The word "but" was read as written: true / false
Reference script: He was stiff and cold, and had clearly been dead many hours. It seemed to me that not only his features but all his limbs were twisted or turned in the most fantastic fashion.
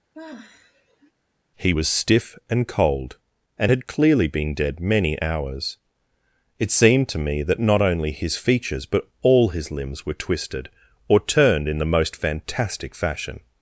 true